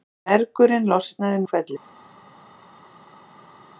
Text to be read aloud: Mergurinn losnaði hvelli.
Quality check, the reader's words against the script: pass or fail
pass